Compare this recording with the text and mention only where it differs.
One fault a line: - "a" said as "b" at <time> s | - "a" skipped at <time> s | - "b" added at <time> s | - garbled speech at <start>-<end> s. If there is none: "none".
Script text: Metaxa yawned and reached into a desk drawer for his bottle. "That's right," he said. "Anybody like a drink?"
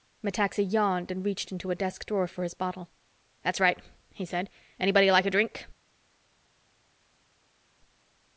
none